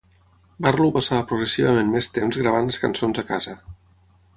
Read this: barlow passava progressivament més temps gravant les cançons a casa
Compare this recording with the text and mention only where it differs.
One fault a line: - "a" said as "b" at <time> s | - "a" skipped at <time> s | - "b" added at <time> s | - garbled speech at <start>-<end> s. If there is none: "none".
none